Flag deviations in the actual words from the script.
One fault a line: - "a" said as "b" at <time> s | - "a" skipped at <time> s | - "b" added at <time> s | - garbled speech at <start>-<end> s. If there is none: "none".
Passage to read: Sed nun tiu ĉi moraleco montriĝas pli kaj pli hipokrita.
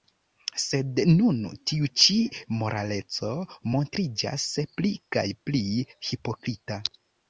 none